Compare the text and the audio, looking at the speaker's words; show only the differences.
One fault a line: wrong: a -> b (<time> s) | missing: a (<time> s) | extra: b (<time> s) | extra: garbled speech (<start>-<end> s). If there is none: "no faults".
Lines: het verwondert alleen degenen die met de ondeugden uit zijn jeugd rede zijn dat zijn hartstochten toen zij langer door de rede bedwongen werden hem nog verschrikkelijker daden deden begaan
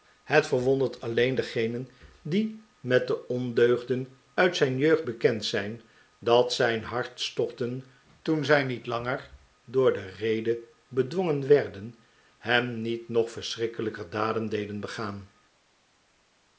wrong: rede -> bekend (5.0 s)
extra: niet (8.6 s)
extra: niet (12.8 s)